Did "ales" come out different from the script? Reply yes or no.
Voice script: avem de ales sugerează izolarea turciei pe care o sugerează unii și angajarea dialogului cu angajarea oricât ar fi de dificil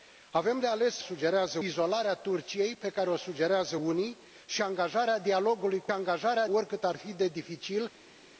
no